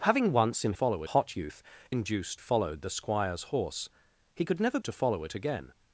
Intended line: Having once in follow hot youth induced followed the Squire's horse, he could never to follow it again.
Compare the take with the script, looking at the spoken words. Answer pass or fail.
pass